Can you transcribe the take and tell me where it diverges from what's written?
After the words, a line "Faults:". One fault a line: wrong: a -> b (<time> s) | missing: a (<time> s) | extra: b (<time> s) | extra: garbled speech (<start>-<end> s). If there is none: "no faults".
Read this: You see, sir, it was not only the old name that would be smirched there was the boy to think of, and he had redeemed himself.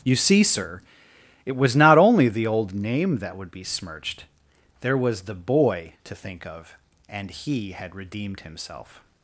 You see, sir, it was not only the old name that would be smirched there was the boy to think of, and he had redeemed himself.
Faults:
no faults